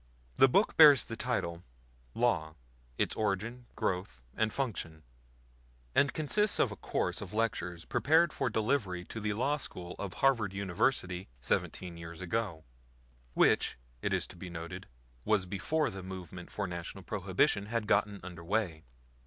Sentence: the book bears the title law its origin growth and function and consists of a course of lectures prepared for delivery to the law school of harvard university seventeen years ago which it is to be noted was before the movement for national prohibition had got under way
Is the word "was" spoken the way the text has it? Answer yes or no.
yes